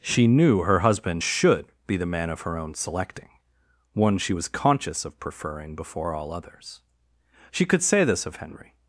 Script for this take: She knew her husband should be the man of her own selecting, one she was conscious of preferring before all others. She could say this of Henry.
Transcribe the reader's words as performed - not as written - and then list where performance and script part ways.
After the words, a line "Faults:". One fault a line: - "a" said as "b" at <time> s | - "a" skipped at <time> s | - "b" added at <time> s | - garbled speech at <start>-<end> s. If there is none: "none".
She knew her husband should be the man of her own selecting, one she was conscious of preferring before all others. She could say this of Henry.
Faults:
none